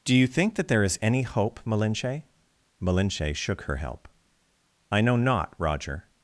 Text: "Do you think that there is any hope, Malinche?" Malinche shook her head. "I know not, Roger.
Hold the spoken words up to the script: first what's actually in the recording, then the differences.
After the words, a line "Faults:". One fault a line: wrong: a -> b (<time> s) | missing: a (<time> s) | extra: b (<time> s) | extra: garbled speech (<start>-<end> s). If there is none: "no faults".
"Do you think that there is any hope, Malinche?" Malinche shook her help. "I know not, Roger.
Faults:
wrong: head -> help (3.8 s)